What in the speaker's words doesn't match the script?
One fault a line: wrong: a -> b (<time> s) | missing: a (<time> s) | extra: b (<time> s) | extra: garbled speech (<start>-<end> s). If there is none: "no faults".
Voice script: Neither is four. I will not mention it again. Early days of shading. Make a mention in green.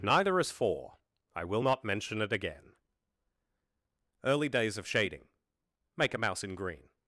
wrong: mention -> mouse (6.2 s)